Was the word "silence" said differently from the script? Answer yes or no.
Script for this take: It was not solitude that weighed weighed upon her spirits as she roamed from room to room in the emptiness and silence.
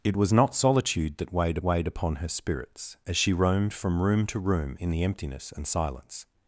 no